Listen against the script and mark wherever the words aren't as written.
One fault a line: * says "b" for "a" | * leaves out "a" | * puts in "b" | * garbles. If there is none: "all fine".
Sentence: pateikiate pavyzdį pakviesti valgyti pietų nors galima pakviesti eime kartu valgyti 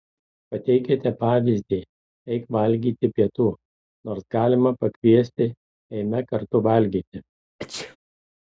* says "eik" for "pakviesti"